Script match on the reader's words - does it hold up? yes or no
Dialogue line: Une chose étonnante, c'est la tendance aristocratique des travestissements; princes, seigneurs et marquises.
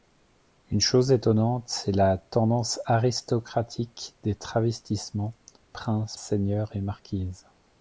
yes